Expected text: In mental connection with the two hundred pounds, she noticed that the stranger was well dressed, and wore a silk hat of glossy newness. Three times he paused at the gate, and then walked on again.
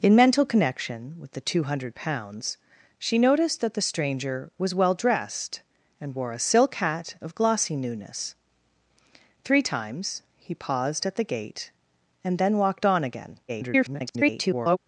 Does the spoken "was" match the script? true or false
true